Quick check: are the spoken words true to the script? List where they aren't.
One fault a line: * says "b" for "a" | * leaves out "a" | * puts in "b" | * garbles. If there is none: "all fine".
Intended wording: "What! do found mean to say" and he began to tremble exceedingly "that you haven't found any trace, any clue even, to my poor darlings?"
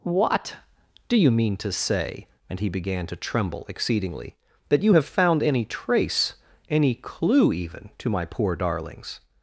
* says "you" for "found"
* says "have" for "haven't"